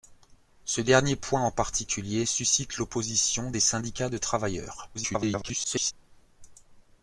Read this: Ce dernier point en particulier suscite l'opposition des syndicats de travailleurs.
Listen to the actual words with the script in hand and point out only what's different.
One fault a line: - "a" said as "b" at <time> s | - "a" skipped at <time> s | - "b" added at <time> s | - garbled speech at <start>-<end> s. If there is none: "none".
- garbled speech at 4.9-5.9 s